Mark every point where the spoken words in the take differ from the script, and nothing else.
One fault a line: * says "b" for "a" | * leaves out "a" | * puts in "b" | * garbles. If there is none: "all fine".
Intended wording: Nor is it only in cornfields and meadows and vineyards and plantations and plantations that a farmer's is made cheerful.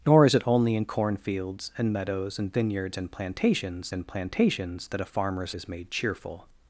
all fine